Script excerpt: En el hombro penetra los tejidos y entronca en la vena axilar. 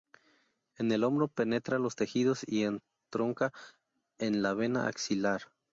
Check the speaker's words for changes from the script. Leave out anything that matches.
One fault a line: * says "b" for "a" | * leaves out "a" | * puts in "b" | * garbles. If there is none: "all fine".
all fine